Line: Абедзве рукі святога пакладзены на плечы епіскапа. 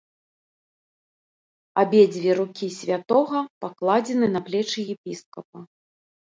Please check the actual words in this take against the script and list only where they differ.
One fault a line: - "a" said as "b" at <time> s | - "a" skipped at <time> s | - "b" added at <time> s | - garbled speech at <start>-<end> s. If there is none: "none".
none